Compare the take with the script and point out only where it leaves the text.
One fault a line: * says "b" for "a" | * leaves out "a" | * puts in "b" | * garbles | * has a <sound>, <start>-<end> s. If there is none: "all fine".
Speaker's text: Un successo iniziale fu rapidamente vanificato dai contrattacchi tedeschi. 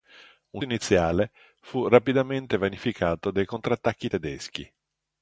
* leaves out "successo"